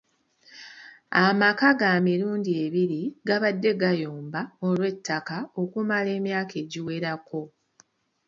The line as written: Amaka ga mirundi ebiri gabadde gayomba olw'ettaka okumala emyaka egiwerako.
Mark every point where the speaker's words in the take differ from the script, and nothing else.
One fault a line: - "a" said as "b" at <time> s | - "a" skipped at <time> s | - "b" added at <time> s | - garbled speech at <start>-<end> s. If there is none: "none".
none